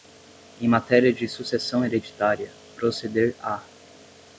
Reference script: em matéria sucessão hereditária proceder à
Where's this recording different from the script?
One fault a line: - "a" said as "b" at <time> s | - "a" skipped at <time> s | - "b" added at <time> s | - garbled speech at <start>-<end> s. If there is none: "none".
- "de" added at 1.1 s